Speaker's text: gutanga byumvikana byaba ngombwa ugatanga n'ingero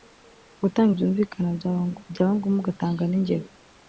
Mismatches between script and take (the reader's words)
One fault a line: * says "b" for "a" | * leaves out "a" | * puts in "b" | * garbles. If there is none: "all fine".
all fine